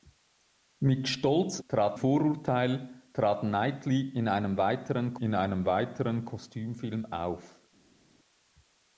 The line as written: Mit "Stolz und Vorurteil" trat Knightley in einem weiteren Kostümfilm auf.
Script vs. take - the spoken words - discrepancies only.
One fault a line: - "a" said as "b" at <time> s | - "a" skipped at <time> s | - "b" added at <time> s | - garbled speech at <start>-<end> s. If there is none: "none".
- "und" said as "trat" at 1.7 s
- "in einem weiteren" added at 5.1 s